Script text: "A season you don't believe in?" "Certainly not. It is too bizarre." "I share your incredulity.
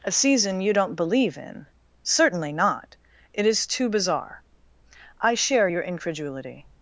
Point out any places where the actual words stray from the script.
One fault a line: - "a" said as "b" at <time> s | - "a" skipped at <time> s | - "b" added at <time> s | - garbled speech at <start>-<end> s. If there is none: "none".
none